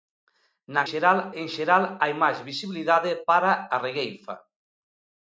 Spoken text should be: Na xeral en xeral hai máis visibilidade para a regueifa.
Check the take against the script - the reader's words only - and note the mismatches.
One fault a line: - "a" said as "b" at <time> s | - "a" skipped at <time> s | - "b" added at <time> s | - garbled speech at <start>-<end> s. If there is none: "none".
none